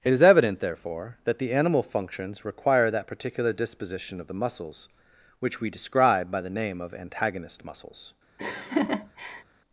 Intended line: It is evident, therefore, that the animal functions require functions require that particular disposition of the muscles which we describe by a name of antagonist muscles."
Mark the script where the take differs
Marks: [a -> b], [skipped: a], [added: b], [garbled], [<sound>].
It is evident, therefore, that the animal functions require [skipped: functions require] that particular disposition of the muscles which we describe by [a -> the] name of antagonist muscles." [laugh]